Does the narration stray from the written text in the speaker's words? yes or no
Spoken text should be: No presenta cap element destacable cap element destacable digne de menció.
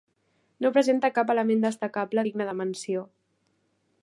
yes